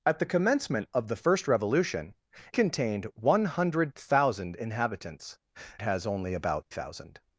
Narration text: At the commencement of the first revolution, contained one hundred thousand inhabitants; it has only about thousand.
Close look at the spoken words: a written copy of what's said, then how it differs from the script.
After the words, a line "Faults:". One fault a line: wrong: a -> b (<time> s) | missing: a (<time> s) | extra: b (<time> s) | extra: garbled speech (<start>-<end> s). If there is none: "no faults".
At the commencement of the first revolution, contained one hundred thousand inhabitants; it has only about thousand.
Faults:
no faults